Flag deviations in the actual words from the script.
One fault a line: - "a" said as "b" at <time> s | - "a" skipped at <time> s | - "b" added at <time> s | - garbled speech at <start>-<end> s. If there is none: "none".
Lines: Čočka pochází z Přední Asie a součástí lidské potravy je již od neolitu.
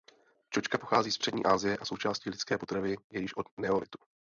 none